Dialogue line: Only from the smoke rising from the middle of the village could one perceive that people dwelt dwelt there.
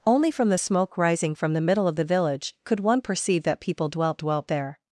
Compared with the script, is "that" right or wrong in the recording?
right